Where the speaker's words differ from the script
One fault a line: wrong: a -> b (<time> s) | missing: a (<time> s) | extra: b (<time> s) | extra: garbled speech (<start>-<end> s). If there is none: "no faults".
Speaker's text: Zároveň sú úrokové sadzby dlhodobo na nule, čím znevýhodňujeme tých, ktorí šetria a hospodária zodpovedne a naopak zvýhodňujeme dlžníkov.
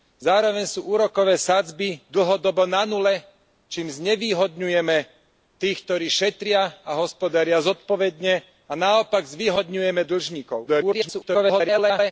extra: garbled speech (10.7-12.1 s)